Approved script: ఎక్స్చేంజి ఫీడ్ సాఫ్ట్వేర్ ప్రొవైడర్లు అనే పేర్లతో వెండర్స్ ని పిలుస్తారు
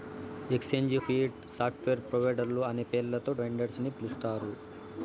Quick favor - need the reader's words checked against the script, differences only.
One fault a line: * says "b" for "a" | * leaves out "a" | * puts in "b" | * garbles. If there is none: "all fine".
all fine